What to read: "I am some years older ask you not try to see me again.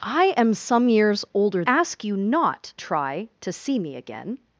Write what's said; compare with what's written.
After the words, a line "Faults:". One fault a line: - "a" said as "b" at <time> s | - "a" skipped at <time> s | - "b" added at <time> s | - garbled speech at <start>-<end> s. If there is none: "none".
"I am some years older ask you not try to see me again.
Faults:
none